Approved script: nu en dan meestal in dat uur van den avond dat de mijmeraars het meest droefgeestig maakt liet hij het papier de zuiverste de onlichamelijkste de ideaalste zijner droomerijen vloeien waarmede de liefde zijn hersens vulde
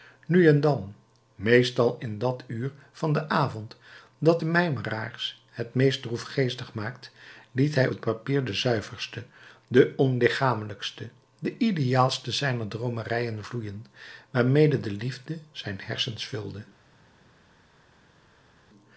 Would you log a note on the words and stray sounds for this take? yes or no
no